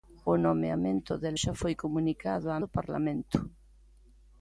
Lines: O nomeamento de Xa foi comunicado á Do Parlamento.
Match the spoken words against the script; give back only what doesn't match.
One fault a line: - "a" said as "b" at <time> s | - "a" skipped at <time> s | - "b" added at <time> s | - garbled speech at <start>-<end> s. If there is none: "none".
none